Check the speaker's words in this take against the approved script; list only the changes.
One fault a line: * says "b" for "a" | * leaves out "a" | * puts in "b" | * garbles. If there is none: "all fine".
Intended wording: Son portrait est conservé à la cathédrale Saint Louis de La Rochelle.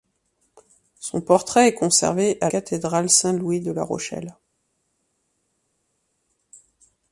* leaves out "la"